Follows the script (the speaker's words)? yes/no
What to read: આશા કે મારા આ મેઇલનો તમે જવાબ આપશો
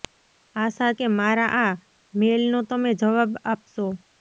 yes